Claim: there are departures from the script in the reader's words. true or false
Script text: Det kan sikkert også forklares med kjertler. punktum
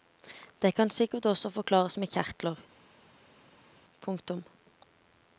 false